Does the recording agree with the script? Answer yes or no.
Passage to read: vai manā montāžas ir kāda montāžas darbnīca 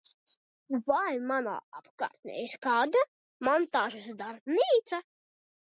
no